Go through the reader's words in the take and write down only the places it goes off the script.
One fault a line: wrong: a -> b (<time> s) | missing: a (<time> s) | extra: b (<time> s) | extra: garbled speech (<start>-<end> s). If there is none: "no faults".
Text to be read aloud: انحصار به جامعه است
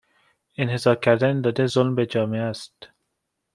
extra: کردن داده ظلم (0.9 s)